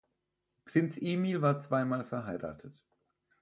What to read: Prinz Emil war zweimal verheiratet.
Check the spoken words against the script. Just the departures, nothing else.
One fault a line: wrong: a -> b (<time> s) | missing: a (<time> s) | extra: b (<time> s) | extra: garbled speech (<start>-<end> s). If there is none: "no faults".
no faults